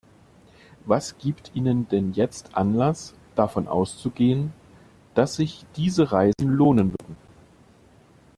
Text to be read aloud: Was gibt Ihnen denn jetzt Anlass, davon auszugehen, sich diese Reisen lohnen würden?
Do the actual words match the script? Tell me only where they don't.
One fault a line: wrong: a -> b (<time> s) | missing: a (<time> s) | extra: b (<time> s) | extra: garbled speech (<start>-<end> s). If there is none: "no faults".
extra: dass (5.1 s)